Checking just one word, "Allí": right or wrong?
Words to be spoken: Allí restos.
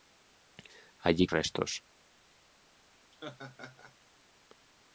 right